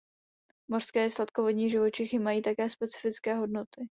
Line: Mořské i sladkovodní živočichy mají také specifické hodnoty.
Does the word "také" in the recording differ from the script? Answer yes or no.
no